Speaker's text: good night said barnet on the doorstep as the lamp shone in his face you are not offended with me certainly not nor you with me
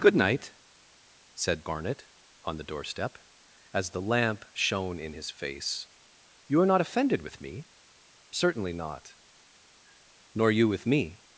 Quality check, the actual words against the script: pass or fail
pass